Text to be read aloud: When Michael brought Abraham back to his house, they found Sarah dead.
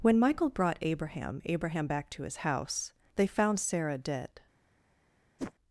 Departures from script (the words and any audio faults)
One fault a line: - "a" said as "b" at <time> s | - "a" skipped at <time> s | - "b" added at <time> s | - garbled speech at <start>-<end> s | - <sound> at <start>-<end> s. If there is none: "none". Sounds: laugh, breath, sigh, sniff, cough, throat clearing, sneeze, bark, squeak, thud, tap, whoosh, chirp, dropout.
- "Abraham" added at 1.4 s
- whoosh at 5.4-5.5 s